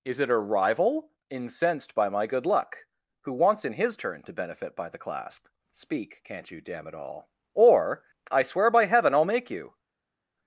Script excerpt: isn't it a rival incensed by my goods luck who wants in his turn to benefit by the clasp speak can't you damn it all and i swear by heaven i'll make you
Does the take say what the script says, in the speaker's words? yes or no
no